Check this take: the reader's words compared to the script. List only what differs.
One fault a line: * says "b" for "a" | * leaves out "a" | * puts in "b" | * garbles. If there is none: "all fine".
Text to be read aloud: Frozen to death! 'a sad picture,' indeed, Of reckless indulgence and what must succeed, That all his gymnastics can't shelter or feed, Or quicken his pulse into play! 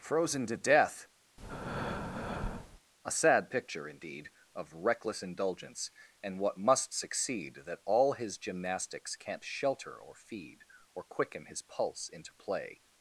all fine